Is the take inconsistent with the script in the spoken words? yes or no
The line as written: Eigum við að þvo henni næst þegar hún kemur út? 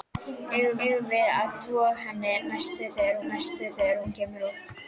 yes